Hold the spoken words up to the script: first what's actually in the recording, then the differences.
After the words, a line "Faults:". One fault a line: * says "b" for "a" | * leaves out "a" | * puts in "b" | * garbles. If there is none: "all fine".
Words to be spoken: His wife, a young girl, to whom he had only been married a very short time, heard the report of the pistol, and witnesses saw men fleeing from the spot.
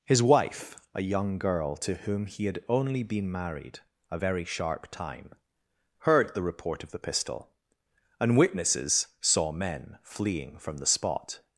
His wife, a young girl, to whom he had only been married a very sharp time, heard the report of the pistol, and witnesses saw men fleeing from the spot.
Faults:
* says "sharp" for "short"